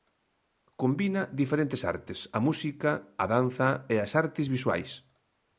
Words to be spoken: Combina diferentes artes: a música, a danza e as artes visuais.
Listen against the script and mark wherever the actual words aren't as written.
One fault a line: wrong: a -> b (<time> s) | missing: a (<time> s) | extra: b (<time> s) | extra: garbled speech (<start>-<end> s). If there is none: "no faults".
no faults